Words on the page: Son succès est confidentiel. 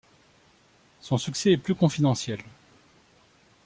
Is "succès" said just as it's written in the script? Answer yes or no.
yes